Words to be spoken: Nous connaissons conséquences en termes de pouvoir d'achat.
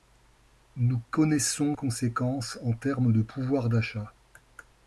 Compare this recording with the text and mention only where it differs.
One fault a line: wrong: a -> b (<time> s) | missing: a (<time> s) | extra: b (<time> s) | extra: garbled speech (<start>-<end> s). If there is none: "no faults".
no faults